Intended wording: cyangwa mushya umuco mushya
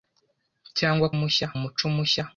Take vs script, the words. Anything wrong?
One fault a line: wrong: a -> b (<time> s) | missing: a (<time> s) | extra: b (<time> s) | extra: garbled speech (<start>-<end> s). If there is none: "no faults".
no faults